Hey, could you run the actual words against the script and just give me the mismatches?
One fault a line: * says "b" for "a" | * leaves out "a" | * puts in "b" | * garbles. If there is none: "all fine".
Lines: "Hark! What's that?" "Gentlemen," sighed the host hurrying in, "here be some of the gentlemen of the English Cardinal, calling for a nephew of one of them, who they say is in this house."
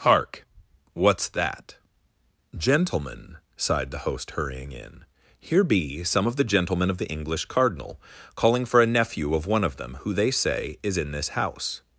all fine